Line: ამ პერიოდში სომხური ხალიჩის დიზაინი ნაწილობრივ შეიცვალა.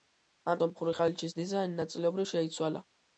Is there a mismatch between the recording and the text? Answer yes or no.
yes